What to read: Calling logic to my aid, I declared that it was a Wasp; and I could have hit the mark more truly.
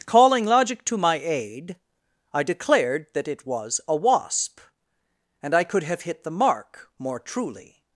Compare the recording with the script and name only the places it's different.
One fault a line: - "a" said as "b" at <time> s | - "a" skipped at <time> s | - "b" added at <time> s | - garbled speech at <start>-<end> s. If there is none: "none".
none